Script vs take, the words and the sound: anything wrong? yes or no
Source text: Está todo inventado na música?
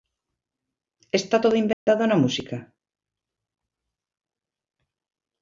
yes